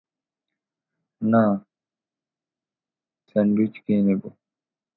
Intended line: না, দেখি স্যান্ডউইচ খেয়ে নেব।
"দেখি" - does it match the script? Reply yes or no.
no